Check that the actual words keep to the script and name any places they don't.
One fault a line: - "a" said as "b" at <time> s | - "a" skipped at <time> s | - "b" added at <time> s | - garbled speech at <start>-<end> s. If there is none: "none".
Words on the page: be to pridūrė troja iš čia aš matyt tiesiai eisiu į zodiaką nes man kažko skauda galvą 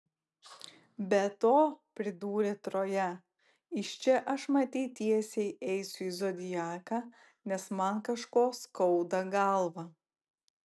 none